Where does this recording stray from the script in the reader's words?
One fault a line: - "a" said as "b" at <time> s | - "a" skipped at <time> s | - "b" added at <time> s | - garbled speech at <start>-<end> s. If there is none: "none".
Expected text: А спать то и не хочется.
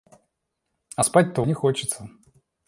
none